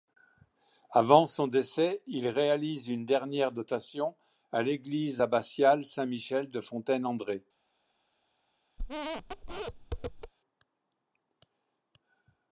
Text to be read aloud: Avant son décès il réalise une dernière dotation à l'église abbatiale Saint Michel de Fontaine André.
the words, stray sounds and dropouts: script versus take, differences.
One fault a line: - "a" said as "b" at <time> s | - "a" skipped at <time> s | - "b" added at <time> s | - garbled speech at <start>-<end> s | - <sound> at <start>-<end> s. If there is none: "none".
- squeak at 8.8-10.3 s